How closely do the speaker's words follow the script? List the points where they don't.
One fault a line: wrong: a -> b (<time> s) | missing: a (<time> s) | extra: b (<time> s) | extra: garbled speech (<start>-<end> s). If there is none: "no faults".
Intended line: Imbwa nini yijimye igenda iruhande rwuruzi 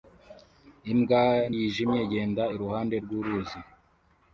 missing: nini (1.2 s)